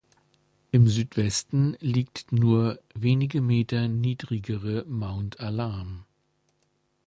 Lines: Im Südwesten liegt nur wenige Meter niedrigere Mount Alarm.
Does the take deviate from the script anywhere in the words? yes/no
no